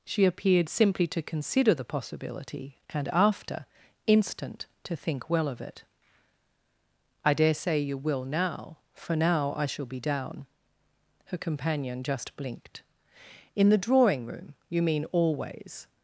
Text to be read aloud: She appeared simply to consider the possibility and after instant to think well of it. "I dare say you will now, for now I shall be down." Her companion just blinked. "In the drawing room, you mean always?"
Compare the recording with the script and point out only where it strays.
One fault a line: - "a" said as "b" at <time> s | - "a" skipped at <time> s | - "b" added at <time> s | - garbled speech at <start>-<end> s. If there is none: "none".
none